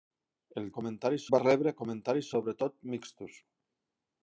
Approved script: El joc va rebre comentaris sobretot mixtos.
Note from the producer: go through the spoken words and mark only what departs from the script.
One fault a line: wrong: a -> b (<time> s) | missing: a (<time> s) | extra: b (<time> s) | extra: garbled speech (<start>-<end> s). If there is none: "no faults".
wrong: joc -> comentaris (0.8 s)